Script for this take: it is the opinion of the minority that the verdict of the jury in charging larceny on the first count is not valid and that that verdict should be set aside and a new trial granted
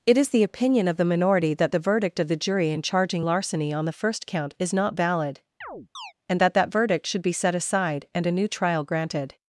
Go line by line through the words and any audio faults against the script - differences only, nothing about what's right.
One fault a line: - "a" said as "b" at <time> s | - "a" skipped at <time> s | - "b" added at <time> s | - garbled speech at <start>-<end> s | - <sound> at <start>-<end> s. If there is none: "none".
- chirp at 5.6-6.1 s